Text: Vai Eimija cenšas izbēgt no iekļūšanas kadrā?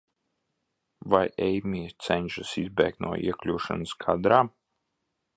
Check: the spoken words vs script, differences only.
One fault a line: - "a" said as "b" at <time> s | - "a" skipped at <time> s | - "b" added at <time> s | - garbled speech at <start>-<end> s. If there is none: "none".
none